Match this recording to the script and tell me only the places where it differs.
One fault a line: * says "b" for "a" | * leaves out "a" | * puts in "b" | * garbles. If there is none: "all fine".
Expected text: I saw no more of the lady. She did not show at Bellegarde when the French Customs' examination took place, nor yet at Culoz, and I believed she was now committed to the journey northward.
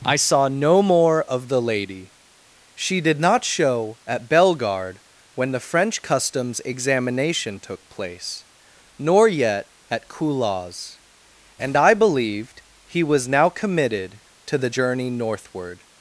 * says "he" for "she"